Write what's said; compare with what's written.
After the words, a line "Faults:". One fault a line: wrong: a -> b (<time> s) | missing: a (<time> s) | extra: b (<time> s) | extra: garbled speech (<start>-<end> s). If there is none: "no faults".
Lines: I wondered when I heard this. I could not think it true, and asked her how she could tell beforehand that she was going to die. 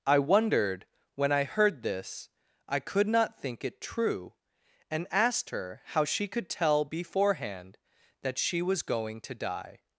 I wondered when I heard this. I could not think it true, and asked her how she could tell beforehand that she was going to die.
Faults:
no faults